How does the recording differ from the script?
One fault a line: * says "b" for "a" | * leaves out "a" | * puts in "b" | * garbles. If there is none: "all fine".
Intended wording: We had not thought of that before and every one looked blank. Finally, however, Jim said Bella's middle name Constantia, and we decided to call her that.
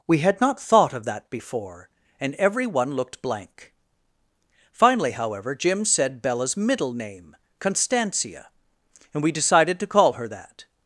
all fine